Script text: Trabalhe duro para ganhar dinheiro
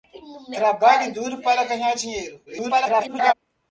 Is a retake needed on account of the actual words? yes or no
yes